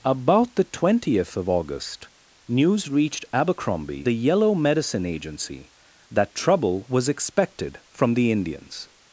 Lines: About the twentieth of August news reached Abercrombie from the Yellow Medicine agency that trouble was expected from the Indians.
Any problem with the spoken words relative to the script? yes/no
yes